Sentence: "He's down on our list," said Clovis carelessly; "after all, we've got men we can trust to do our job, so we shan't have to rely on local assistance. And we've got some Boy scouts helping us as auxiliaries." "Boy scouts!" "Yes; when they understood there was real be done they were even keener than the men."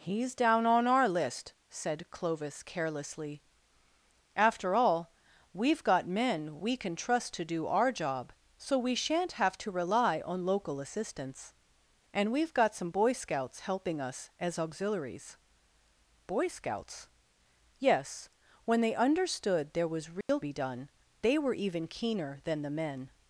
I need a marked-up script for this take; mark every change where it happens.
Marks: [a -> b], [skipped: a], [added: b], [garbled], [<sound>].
"He's down on our list," said Clovis carelessly; "after all, we've got men we can trust to do our job, so we shan't have to rely on local assistance. And we've got some Boy scouts helping us as auxiliaries." "Boy scouts!" "Yes; when they understood there was real [dropout] be done they were even keener than the men."